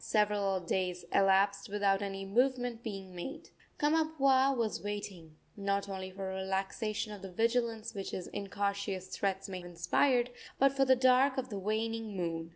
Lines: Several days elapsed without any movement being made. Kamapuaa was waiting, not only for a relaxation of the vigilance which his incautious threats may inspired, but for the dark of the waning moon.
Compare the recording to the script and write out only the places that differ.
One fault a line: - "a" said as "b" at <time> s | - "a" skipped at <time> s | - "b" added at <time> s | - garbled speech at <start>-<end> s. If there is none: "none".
none